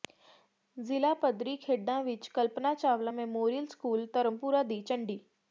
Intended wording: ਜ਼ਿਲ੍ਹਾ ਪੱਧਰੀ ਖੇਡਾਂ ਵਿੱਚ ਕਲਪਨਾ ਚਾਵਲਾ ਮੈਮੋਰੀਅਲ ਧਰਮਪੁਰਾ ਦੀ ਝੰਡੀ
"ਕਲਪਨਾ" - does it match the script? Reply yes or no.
yes